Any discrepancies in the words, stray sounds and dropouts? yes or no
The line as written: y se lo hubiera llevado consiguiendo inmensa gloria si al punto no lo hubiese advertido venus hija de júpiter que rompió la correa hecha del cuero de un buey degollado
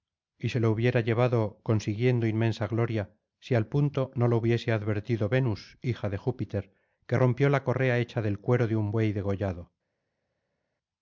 no